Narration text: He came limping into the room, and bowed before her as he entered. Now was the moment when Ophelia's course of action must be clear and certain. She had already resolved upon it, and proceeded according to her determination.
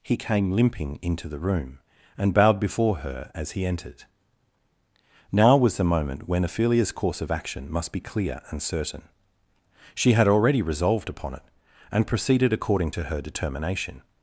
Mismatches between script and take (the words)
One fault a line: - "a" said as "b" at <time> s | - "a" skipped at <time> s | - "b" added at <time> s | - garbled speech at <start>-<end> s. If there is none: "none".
none